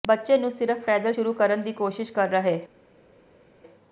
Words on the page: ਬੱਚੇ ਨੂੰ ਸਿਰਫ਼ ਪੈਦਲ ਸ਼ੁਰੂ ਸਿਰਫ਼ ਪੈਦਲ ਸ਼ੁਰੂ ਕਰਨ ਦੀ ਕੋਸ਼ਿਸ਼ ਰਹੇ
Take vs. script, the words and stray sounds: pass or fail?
fail